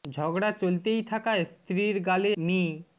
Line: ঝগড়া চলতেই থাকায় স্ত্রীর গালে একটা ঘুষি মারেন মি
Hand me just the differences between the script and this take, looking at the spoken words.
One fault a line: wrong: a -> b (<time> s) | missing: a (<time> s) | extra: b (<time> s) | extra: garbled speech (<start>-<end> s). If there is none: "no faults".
missing: একটা ঘুষি মারেন (2.3 s)